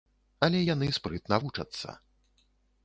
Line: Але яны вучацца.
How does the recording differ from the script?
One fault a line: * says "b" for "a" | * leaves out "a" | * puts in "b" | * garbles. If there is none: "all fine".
* puts in "спрытна"